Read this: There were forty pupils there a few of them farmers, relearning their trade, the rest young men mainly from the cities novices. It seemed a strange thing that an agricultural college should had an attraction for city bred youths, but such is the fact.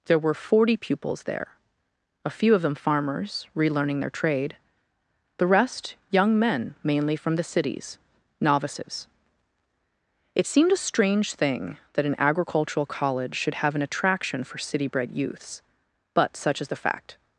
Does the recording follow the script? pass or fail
fail